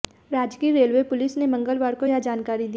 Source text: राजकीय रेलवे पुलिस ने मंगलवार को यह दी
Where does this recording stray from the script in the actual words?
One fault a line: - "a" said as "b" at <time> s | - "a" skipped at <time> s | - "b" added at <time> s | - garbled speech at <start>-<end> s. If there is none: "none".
- "जानकारी" added at 2.2 s